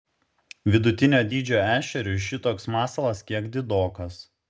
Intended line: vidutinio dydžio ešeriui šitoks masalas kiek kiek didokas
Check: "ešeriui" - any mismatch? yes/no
no